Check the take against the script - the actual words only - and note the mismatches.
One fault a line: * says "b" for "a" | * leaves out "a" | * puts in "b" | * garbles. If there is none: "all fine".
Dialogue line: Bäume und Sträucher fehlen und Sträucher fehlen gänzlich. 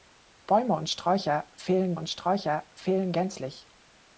all fine